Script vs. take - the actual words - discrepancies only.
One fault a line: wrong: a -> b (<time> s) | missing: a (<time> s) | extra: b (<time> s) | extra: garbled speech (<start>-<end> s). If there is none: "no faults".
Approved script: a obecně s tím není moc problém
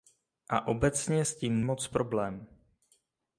missing: není (1.6 s)